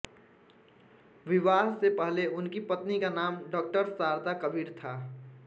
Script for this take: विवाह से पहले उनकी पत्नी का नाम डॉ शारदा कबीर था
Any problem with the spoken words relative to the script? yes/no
no